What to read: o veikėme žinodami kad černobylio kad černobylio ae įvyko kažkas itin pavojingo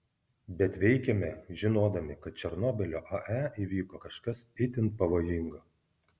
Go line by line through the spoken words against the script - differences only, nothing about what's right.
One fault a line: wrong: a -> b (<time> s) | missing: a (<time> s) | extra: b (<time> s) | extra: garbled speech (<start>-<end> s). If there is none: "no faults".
wrong: o -> bet (0.6 s)
missing: kad černobylio (3.0 s)